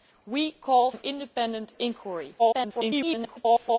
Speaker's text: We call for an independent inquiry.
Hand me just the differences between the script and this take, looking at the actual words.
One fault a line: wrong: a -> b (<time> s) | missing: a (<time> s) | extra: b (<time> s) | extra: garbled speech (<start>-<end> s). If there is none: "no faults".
missing: for (0.9 s)
extra: garbled speech (2.4-3.8 s)